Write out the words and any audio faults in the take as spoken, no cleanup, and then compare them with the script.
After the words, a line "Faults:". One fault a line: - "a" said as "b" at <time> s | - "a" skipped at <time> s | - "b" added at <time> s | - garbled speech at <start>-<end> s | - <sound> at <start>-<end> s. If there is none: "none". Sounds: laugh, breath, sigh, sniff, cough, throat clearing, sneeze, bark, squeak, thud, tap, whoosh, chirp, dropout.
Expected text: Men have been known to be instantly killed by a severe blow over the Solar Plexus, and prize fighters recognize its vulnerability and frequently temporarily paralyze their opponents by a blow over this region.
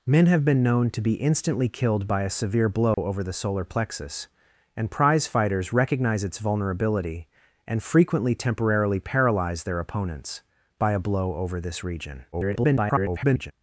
Men have been known to be instantly killed by a severe blow over the Solar Plexus, and prize fighters recognize its vulnerability and frequently temporarily paralyze their opponents by a blow over this region. [garbled]
Faults:
- dropout at 2.9-3.0 s
- garbled speech at 12.3-13.5 s